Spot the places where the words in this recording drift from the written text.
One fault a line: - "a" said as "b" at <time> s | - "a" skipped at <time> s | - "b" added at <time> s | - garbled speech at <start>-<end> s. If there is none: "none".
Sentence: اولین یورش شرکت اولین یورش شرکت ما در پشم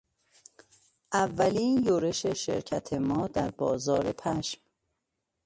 - "اولین یورش شرکت" skipped at 2.9 s
- "بازار" added at 3.5 s